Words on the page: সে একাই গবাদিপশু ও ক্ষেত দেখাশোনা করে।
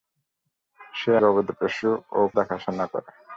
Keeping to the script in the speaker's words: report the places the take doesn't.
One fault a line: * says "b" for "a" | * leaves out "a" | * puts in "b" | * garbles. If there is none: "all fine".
* leaves out "একাই"
* leaves out "ক্ষেত"